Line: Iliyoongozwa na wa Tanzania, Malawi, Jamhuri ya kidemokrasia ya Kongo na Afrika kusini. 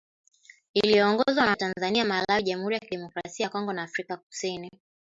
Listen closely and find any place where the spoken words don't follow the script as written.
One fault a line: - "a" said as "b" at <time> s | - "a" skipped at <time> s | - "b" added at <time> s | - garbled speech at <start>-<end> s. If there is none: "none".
none